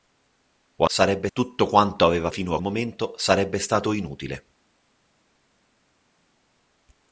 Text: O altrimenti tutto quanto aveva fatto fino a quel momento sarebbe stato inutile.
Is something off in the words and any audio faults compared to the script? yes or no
yes